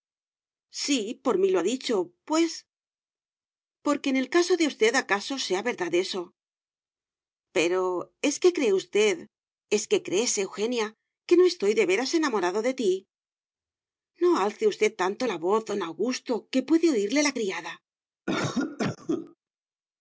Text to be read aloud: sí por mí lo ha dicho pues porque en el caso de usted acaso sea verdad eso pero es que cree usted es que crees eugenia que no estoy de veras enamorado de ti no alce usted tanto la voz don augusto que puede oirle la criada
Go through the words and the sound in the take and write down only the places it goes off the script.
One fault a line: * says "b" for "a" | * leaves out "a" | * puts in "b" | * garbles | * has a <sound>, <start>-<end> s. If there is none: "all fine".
* has a cough, 18.3-19.4 s